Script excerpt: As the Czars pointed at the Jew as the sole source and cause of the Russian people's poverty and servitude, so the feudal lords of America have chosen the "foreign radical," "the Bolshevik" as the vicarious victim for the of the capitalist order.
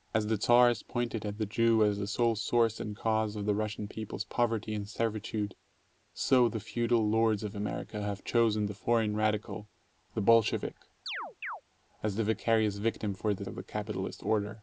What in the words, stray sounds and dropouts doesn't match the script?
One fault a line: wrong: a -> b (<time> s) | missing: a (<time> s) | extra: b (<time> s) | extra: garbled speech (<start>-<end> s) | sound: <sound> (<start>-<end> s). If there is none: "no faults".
sound: chirp (11.1-11.6 s)